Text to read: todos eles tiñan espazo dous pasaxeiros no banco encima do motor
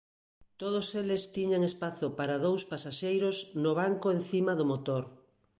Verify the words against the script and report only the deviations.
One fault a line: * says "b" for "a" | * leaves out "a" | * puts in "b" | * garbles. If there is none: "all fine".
* puts in "para"